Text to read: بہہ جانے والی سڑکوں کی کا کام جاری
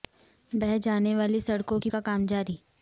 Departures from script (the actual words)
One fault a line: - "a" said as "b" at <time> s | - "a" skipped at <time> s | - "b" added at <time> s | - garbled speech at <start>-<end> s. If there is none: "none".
none